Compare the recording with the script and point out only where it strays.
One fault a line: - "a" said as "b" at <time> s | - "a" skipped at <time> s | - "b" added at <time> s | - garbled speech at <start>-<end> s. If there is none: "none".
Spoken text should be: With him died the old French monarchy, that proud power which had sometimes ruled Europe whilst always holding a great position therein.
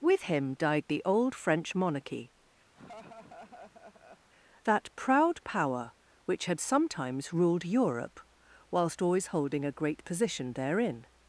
none